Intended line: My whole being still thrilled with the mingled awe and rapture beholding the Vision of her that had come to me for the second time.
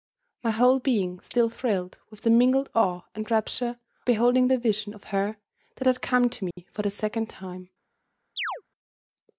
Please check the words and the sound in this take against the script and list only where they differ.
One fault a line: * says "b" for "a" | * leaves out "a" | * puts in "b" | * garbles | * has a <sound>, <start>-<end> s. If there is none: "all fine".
* has a dropout, 6.5-6.6 s
* has a chirp, 8.4-8.6 s